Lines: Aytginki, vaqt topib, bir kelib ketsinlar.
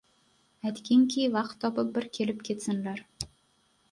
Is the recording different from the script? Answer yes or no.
no